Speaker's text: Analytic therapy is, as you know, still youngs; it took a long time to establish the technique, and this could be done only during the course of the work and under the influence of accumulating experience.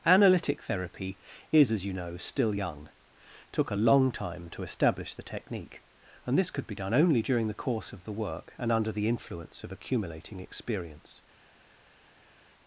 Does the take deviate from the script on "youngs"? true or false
true